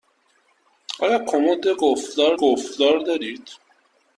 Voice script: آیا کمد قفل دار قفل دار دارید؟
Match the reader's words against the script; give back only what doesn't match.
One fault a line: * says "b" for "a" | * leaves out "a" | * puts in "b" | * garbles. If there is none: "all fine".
all fine